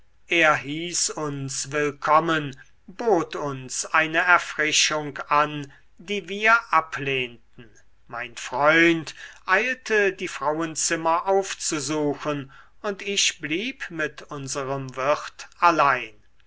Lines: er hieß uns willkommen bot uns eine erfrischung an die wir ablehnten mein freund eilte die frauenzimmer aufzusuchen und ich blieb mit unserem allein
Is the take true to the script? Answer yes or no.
no